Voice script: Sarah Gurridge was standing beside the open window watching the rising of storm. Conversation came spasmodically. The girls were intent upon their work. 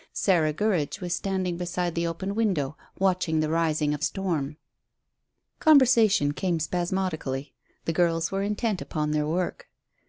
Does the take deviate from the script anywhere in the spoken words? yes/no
no